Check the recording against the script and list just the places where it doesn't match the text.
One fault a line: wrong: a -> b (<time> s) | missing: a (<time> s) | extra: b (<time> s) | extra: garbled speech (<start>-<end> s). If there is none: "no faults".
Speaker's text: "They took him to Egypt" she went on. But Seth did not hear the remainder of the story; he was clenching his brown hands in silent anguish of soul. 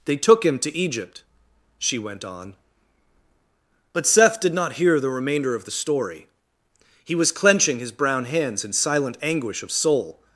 no faults